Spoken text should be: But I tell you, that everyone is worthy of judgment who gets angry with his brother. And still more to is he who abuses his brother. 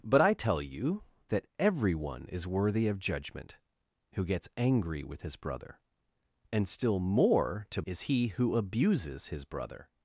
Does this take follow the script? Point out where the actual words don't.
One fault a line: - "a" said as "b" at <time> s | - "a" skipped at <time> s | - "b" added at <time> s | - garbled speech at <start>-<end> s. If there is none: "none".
none